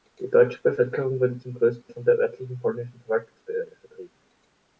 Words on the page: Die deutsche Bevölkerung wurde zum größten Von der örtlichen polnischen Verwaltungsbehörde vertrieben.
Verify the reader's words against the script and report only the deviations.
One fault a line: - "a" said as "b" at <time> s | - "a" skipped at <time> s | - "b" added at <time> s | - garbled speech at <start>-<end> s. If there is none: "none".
none